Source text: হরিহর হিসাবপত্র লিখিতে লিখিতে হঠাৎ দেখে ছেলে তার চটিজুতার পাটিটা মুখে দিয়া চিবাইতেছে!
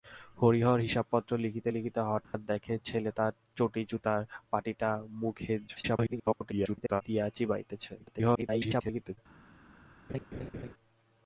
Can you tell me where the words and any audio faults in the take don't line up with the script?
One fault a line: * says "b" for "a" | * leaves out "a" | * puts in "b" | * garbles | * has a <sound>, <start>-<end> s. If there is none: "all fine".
* has a dropout, 2.2-2.3 s
* garbles
* garbles
* has a laugh, 10.1-10.7 s